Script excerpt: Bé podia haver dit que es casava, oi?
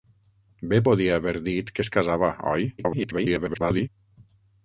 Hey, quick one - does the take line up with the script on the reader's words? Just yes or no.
no